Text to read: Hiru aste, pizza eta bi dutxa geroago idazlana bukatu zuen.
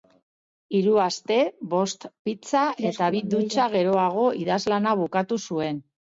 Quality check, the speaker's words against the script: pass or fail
fail